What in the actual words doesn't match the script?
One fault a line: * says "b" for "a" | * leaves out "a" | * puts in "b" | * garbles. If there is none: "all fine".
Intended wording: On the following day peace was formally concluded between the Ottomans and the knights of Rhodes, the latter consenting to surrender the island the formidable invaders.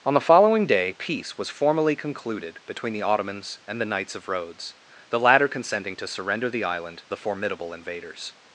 all fine